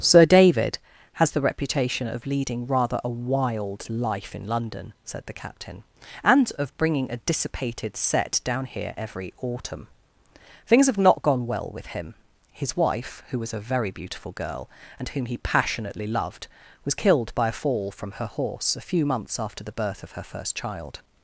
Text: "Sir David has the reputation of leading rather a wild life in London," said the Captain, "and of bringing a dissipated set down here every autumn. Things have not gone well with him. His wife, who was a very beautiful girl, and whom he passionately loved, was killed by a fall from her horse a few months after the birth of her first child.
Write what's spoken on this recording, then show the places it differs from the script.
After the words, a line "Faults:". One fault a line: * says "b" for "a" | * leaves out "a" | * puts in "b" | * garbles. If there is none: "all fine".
"Sir David has the reputation of leading rather a wild life in London," said the Captain, "and of bringing a dissipated set down here every autumn. Things have not gone well with him. His wife, who was a very beautiful girl, and whom he passionately loved, was killed by a fall from her horse a few months after the birth of her first child.
Faults:
all fine